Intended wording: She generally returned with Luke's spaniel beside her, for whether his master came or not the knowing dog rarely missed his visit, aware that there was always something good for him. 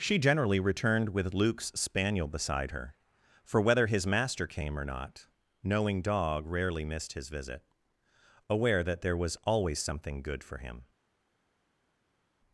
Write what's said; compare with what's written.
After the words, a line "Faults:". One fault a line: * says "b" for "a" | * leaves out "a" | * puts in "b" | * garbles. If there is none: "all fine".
She generally returned with Luke's spaniel beside her, for whether his master came or not knowing dog rarely missed his visit, aware that there was always something good for him.
Faults:
* leaves out "the"